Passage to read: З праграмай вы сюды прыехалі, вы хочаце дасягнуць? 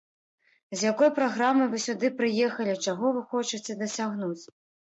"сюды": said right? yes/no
yes